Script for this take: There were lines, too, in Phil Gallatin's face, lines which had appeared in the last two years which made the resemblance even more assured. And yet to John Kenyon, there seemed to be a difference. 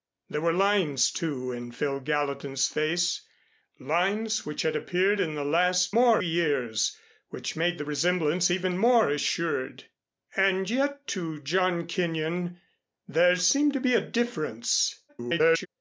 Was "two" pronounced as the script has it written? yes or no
no